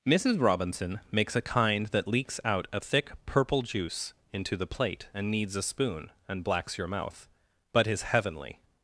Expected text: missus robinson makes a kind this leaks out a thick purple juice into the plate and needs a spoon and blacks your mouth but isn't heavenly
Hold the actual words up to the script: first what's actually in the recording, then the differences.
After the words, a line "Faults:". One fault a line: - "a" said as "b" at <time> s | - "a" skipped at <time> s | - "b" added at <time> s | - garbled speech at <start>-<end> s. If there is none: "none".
missus robinson makes a kind that leaks out a thick purple juice into the plate and needs a spoon and blacks your mouth but is heavenly
Faults:
- "this" said as "that" at 1.9 s
- "isn't" said as "is" at 7.9 s